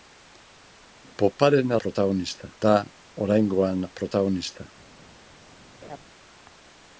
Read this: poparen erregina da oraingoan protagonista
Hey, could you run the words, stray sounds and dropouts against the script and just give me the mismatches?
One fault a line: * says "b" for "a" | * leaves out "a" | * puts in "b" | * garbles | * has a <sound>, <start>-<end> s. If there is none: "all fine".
* says "protagonista" for "erregina"
* has a laugh, 5.8-6.0 s